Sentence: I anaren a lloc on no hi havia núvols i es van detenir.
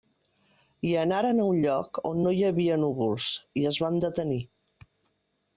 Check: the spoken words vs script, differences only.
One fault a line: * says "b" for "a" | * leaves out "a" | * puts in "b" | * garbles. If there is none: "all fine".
* puts in "un"